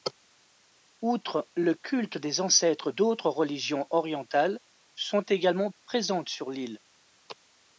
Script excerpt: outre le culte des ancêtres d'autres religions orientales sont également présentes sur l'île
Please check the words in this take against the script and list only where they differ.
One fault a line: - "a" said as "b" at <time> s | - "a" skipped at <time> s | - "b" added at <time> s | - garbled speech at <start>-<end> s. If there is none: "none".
none